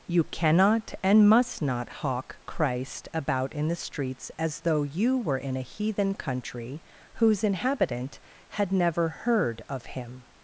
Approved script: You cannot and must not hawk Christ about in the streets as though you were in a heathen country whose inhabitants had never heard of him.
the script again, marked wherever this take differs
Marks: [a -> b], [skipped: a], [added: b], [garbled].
You cannot and must not hawk Christ about in the streets as though you were in a heathen country whose [inhabitants -> inhabitant] had never heard of him.